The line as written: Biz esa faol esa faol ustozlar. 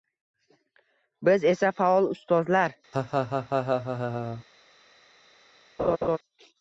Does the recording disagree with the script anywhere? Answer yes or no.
yes